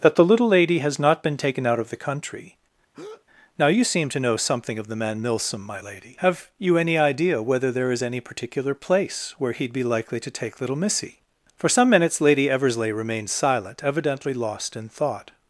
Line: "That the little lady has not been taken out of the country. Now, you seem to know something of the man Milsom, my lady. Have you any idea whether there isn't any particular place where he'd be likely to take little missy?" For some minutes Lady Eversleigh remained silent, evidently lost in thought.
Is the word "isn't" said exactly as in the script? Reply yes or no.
no